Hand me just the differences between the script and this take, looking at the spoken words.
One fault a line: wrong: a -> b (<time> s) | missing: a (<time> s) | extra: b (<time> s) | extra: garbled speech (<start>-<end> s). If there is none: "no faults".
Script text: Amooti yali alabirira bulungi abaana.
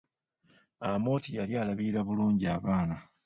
no faults